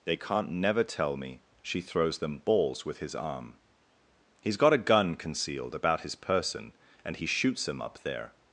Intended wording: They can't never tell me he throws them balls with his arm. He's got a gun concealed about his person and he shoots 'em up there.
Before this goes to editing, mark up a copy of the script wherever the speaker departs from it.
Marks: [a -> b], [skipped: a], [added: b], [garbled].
They can't never tell me [he -> she] throws them balls with his arm. He's got a gun concealed about his person and he shoots 'em up there.